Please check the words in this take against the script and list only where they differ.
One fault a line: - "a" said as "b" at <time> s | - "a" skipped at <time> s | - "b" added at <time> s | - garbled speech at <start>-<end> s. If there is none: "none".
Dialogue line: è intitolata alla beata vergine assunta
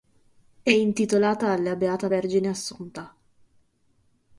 none